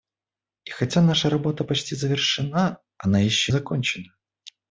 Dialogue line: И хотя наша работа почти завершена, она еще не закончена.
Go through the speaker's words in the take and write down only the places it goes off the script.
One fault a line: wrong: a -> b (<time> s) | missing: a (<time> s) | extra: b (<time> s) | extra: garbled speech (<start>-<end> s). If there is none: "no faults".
missing: не (3.5 s)